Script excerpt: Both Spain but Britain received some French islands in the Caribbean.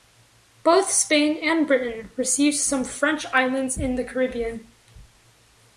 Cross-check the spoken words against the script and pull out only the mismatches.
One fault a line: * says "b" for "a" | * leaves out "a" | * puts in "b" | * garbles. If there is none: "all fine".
* says "and" for "but"